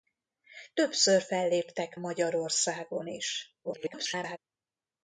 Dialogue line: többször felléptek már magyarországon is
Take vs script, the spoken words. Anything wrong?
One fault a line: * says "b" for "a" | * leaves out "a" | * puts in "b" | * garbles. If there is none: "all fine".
* leaves out "már"
* garbles